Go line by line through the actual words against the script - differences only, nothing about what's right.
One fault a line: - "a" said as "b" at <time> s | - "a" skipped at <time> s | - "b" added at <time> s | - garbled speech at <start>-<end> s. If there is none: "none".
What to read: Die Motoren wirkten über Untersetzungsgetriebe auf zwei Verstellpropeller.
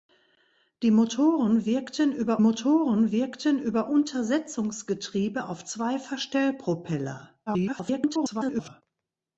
- "Motoren wirkten über" added at 2.4 s
- garbled speech at 7.5-8.8 s